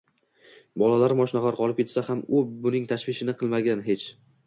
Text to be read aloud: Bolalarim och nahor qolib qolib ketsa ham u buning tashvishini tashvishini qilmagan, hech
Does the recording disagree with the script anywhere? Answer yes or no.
yes